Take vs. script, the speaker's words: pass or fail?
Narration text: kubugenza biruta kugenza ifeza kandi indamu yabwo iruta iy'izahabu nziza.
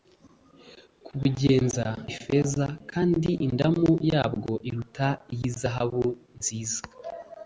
fail